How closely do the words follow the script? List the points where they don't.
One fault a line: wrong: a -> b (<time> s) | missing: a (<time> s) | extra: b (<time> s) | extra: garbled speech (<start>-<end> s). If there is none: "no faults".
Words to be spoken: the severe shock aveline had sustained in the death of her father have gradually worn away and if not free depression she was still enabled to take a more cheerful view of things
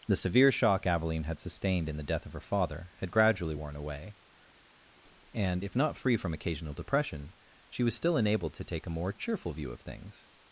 wrong: have -> had (3.0 s)
extra: from occasional (6.2 s)